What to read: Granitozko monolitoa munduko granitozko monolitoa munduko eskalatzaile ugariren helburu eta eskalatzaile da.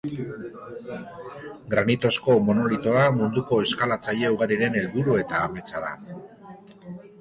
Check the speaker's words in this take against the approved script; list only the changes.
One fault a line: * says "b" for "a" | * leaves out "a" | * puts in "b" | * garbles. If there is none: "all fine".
* leaves out "granitozko monolitoa munduko"
* says "ametsa" for "eskalatzaile"